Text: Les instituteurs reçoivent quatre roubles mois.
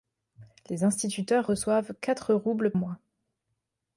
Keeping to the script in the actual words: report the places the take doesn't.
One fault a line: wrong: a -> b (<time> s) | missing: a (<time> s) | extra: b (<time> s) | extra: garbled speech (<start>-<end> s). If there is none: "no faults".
no faults